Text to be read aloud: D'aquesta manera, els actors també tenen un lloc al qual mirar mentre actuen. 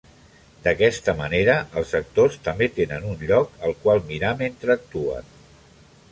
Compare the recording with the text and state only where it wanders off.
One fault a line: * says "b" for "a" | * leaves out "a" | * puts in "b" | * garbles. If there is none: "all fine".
all fine